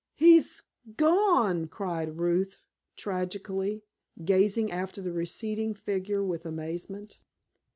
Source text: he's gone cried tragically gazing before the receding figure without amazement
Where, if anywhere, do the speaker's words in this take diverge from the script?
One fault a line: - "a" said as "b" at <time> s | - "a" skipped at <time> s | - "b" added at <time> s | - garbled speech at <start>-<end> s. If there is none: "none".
- "ruth" added at 2.2 s
- "before" said as "after" at 4.7 s
- "without" said as "with" at 6.2 s